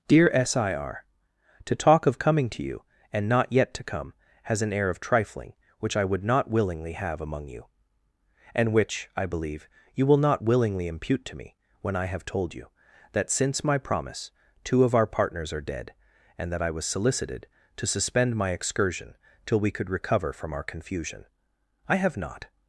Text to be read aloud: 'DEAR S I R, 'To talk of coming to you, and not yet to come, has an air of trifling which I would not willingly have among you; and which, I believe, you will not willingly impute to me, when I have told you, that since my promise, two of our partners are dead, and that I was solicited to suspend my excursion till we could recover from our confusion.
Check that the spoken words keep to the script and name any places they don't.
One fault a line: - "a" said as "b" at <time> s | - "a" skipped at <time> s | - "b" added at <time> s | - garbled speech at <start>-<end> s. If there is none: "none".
- "I have not" added at 21.9 s